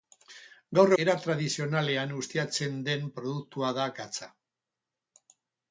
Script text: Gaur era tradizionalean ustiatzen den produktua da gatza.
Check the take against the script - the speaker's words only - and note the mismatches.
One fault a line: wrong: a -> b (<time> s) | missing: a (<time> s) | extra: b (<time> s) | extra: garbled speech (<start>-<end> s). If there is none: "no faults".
no faults